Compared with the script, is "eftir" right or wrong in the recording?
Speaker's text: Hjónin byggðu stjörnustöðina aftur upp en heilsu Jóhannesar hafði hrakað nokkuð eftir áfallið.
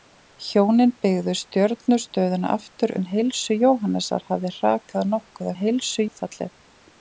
wrong